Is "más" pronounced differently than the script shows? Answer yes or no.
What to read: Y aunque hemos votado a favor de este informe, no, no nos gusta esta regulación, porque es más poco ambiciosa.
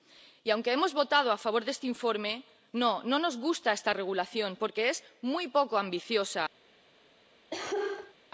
yes